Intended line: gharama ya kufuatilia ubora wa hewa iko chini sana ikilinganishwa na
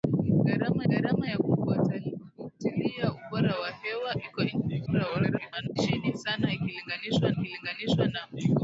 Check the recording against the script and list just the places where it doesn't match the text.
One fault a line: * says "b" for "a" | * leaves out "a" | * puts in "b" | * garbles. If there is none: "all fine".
* puts in "gharama"
* garbles
* puts in "ikilinganishwa"